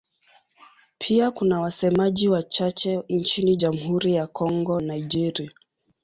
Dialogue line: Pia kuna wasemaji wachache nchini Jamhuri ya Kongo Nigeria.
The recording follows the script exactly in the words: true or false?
true